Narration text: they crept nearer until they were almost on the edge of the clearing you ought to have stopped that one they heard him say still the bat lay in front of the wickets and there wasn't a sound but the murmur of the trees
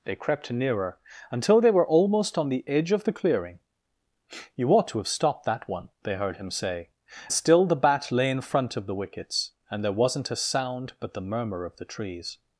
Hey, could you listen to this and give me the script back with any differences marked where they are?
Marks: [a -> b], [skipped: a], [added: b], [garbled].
they crept nearer until they were almost on the edge of the clearing you ought to have stopped that one they heard him say still the bat lay in front of the wickets and there wasn't a sound but the murmur of the trees